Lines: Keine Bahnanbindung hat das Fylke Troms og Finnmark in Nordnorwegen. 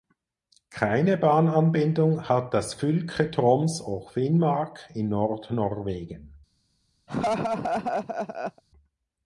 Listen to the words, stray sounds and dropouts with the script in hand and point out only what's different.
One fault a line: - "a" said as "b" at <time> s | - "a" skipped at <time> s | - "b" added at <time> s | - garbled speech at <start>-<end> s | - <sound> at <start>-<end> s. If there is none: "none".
- laugh at 7.1-8.6 s